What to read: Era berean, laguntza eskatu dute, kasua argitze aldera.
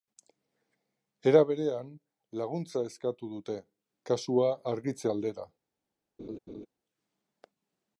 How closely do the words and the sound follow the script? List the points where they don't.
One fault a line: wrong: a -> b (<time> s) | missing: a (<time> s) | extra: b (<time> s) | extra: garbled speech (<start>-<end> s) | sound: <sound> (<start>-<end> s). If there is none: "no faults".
sound: laugh (6.2-6.7 s)